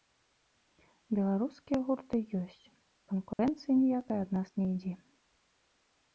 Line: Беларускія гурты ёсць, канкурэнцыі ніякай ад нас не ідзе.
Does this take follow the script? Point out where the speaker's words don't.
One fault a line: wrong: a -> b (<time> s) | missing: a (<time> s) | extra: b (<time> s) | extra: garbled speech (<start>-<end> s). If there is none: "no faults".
no faults